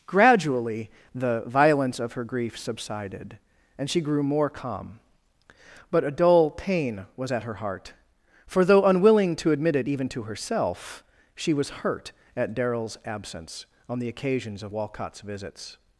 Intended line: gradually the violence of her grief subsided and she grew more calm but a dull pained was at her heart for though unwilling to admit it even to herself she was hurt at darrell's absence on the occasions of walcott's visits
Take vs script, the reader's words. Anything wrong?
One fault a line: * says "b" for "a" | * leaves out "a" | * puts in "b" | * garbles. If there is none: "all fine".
* says "pain" for "pained"